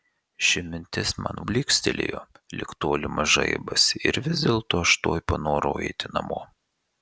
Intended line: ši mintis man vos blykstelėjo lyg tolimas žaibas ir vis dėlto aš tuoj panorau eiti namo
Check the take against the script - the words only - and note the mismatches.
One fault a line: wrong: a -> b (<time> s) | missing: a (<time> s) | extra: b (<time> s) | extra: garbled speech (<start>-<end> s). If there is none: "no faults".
missing: vos (1.4 s)